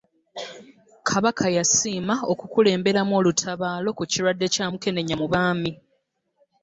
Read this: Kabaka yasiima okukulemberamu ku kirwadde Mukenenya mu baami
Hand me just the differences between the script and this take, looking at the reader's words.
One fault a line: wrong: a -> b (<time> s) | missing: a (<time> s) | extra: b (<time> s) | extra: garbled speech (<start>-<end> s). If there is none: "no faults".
extra: olutabaalo (3.2 s)
extra: Kya (4.5 s)